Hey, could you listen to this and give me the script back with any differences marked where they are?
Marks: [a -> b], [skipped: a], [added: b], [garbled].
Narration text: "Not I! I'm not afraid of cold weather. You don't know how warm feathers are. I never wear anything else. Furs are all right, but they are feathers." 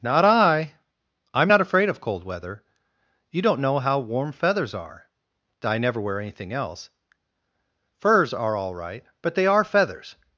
"Not I! I'm not afraid of cold weather. You don't know how warm feathers are. I never wear anything else. Furs are all right, but they are feathers."